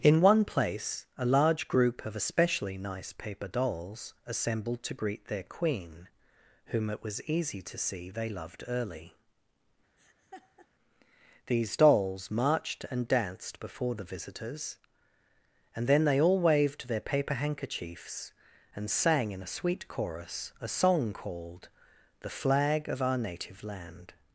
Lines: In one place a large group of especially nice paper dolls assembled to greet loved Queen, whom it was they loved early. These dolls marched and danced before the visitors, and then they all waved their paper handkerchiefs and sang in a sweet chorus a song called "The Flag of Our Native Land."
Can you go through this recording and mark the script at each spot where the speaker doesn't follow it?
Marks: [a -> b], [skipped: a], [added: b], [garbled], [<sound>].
In one place a large group of especially nice paper dolls assembled to greet [loved -> their] Queen, whom it was [added: easy to see] they loved early. [laugh] These dolls marched and danced before the visitors, and then they all waved their paper handkerchiefs and sang in a sweet chorus a song called "The Flag of Our Native Land."